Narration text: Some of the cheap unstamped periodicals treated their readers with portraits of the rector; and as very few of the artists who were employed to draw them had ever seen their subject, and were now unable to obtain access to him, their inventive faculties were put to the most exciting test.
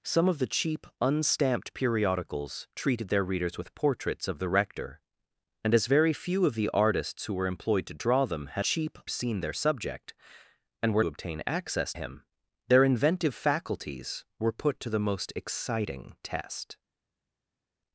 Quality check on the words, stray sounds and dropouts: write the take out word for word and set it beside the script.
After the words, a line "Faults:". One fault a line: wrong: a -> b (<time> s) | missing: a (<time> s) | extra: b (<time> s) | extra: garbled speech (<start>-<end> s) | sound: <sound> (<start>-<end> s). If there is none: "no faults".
Some of the cheap unstamped periodicals treated their readers with portraits of the rector; and as very few of the artists who were employed to draw them had cheap seen their subject, and were obtain access him, their inventive faculties were put to the most exciting test.
Faults:
wrong: ever -> cheap (8.6 s)
missing: now unable to (11.0 s)
missing: to (11.9 s)